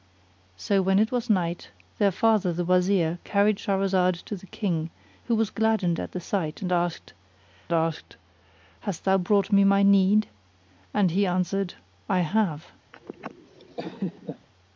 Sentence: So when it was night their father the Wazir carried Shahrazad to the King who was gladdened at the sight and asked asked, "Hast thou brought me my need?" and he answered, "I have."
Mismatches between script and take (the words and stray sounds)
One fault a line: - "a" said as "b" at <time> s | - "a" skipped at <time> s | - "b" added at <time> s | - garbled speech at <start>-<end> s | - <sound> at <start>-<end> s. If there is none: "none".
- laugh at 12.9-14.5 s